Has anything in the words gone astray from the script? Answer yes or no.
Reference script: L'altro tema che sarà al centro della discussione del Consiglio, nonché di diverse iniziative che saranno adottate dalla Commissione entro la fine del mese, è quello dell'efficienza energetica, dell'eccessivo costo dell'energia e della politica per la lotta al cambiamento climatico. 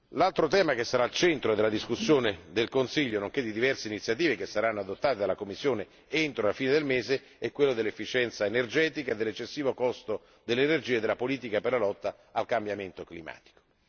no